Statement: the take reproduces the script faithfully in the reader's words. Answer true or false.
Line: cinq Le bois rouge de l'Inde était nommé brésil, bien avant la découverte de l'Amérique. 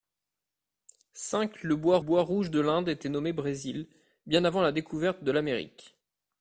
false